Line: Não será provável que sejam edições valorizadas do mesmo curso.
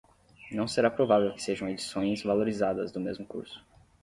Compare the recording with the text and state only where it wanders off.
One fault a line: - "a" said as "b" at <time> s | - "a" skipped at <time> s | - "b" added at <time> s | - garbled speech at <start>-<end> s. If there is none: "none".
none